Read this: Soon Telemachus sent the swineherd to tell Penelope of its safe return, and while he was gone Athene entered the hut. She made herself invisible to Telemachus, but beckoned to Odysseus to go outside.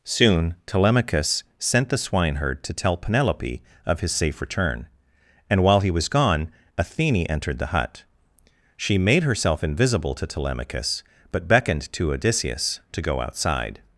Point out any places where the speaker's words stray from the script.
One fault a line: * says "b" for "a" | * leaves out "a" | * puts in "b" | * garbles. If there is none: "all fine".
* says "his" for "its"